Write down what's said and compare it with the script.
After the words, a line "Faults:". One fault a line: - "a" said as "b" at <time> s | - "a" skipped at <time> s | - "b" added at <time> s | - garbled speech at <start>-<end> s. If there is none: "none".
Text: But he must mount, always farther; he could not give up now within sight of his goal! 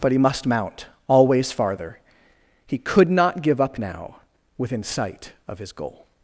But he must mount, always farther; he could not give up now within sight of his goal!
Faults:
none